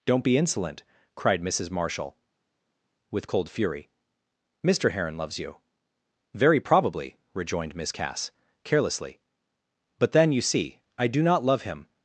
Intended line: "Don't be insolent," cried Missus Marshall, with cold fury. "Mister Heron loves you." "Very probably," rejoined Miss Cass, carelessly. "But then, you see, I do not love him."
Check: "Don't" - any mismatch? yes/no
no